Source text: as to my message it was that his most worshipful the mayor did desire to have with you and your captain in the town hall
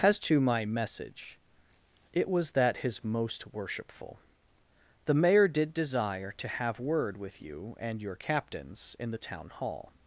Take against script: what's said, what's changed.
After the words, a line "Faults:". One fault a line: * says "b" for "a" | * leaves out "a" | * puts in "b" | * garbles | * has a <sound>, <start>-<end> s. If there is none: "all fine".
as to my message it was that his most worshipful the mayor did desire to have word with you and your captains in the town hall
Faults:
* puts in "word"
* says "captains" for "captain"